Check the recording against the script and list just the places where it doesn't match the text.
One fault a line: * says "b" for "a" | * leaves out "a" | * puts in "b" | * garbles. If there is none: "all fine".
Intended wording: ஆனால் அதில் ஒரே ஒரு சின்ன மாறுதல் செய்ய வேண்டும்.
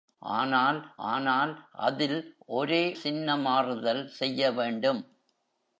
* puts in "ஆனால்"
* leaves out "ஒரு"